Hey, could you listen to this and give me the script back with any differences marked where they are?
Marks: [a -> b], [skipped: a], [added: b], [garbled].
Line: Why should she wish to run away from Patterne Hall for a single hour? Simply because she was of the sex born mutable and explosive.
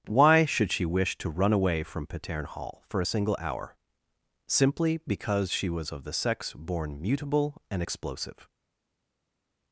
Why should she wish to run away from Patterne Hall for a single hour? Simply because she was of the sex born mutable and explosive.